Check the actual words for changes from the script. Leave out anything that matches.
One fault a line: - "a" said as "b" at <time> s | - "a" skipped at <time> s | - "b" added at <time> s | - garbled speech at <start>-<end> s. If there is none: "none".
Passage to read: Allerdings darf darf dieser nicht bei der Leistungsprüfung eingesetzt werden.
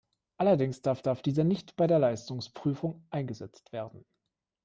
none